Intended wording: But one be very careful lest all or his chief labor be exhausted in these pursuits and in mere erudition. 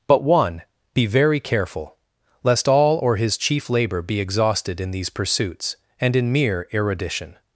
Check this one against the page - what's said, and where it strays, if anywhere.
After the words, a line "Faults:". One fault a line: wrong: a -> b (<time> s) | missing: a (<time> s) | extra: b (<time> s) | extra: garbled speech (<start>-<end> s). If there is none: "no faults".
But one be very careful lest all or his chief labor be exhausted in these pursuits and in mere erudition.
Faults:
no faults